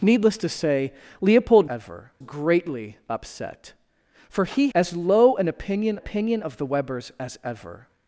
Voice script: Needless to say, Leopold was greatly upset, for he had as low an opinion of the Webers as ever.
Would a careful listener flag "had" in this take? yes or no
yes